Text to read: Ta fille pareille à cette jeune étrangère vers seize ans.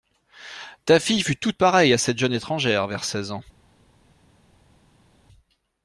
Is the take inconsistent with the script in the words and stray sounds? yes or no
yes